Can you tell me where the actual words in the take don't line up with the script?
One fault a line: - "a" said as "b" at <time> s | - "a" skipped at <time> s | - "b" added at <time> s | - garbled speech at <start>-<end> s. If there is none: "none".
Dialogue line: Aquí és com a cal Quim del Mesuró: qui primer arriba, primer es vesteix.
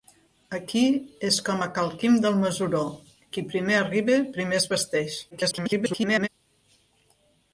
- garbled speech at 5.3-6.3 s